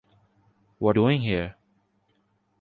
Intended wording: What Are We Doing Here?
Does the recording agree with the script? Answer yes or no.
no